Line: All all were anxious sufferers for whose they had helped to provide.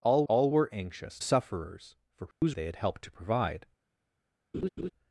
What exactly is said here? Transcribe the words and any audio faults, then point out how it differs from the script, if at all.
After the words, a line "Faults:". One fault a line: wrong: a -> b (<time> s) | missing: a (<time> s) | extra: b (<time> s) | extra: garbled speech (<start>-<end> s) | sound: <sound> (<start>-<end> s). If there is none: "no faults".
All all were anxious sufferers for whose they had helped to provide.
Faults:
sound: dropout (2.3-2.4 s)
sound: laugh (4.5-4.9 s)